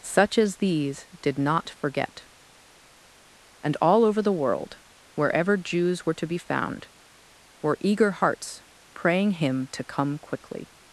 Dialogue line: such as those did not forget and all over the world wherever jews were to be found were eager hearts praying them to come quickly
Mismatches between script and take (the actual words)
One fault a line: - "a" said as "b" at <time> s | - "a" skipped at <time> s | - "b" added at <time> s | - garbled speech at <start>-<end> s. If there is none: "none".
- "those" said as "these" at 0.6 s
- "them" said as "him" at 9.3 s